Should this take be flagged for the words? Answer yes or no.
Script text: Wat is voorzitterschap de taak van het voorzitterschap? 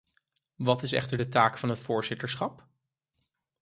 yes